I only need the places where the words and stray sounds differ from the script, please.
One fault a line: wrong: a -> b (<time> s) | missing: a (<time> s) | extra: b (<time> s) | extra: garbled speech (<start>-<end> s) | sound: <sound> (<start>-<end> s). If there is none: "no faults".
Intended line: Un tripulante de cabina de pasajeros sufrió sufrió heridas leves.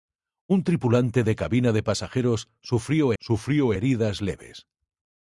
no faults